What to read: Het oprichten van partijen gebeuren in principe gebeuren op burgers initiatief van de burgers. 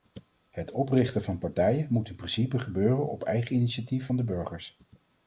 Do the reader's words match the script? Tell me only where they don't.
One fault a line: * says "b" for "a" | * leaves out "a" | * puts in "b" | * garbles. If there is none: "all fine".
* says "moet" for "gebeuren"
* says "eigen" for "burgers"